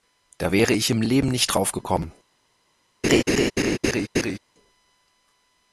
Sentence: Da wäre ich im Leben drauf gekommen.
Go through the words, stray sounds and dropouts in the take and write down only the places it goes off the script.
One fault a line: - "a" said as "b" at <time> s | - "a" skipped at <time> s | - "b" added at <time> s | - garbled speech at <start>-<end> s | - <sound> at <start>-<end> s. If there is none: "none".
- "nicht" added at 1.3 s
- laugh at 3.0-4.4 s